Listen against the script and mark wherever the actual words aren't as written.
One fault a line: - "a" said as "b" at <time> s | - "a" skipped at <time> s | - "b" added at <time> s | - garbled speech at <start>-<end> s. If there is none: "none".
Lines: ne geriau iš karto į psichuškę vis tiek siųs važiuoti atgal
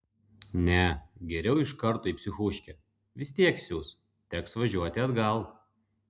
- "teks" added at 4.4 s